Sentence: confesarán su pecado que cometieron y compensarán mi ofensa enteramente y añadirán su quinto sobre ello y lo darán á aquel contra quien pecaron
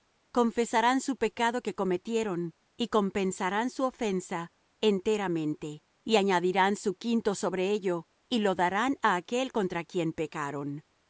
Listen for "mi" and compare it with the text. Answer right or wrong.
wrong